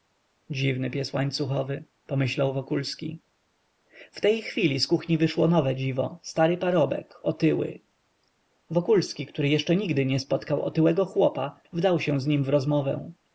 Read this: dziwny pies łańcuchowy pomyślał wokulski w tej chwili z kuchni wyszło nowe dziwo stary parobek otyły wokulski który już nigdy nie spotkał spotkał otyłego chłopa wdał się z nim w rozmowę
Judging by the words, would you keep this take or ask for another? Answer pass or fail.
fail